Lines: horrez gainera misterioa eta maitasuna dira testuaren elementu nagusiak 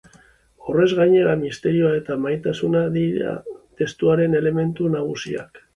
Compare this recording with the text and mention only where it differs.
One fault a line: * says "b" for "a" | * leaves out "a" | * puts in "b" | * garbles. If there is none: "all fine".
all fine